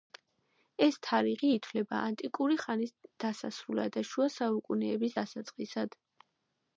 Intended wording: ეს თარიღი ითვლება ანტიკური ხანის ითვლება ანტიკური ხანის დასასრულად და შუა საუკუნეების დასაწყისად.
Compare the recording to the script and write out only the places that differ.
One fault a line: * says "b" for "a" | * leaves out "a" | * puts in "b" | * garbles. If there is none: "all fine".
* leaves out "ითვლება ანტიკური ხანის"